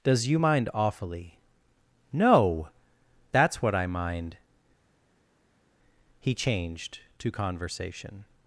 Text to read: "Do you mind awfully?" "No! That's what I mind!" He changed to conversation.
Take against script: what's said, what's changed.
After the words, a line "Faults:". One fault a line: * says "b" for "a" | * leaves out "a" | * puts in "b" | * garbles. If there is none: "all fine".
"Does you mind awfully?" "No! That's what I mind!" He changed to conversation.
Faults:
* says "Does" for "Do"